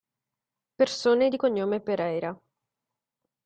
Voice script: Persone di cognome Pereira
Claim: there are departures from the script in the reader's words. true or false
false